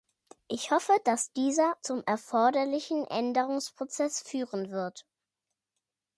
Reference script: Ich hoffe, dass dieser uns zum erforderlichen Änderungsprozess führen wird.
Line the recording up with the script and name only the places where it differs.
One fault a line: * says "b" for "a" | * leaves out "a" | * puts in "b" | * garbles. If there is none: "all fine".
* leaves out "uns"